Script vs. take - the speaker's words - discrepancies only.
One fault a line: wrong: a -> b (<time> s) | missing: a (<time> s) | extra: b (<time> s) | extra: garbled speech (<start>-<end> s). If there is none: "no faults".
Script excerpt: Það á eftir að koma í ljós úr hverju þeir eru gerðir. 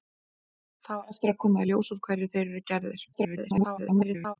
extra: garbled speech (3.1-4.4 s)